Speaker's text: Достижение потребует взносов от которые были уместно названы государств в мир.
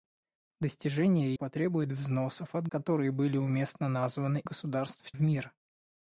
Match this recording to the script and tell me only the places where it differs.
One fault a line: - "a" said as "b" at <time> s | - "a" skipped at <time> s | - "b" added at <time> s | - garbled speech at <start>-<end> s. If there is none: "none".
none